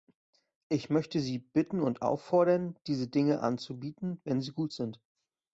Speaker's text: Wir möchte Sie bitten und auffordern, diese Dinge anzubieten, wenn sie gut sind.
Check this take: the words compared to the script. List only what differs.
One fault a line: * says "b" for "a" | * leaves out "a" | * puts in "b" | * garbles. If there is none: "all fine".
* says "Ich" for "Wir"